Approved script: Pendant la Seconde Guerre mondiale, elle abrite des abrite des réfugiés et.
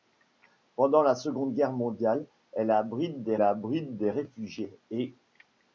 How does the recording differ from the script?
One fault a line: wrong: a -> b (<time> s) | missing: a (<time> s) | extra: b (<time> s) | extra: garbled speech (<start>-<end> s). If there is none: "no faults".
no faults